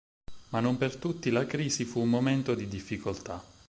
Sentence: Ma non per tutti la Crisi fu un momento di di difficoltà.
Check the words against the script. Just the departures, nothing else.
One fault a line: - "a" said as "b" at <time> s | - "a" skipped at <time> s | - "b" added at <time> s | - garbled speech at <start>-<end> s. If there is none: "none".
- "di" skipped at 2.7 s